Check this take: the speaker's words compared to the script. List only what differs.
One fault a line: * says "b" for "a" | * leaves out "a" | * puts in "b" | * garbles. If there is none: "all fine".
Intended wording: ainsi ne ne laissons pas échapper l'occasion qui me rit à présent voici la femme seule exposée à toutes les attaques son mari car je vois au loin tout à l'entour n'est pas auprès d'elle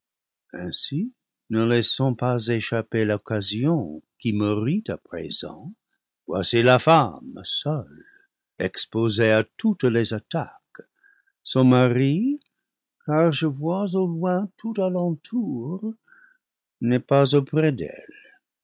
* leaves out "ne"